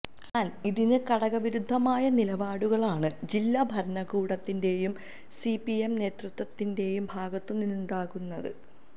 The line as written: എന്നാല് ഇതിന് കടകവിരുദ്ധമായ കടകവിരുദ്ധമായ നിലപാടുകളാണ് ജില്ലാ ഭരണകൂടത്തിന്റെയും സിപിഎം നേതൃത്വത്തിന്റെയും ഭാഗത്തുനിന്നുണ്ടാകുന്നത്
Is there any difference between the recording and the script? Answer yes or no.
yes